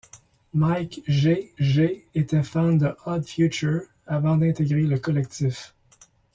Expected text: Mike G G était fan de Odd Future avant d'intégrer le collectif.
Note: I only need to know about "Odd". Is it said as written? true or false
true